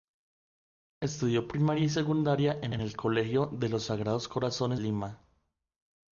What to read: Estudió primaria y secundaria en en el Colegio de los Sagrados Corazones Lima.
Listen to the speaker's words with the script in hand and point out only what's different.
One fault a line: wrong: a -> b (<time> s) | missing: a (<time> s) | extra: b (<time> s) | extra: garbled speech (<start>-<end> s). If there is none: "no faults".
no faults